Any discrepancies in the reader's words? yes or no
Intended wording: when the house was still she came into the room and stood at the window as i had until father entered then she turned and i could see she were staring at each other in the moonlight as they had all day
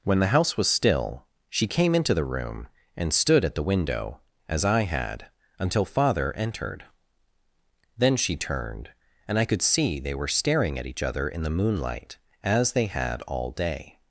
yes